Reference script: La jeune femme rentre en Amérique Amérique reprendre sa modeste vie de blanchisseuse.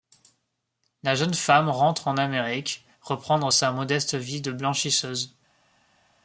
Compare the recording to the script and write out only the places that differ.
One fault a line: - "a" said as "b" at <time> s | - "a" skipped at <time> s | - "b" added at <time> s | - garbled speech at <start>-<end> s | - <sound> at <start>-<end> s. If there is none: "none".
- "Amérique" skipped at 2.9 s